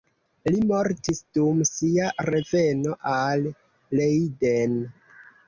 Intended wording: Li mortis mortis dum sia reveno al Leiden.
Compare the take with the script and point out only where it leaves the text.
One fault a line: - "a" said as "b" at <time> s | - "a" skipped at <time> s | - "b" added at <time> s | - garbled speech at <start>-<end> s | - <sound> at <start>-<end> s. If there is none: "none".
- "mortis" skipped at 1.2 s